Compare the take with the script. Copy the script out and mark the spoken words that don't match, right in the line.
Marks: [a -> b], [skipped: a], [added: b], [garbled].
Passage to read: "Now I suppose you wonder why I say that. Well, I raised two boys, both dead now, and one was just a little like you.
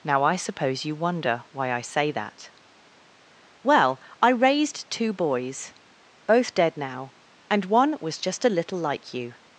"Now I suppose you wonder why I say that. Well, I raised two boys, both dead now, and one was just a little like you.